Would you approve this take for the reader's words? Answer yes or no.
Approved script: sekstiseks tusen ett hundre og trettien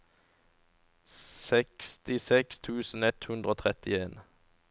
yes